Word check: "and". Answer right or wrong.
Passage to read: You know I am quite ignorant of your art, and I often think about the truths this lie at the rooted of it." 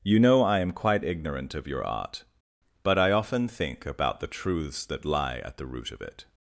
wrong